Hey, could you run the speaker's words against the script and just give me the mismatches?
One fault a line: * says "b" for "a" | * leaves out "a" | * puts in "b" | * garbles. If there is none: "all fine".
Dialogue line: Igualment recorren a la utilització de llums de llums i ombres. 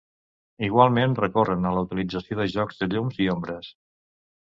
* says "jocs" for "llums"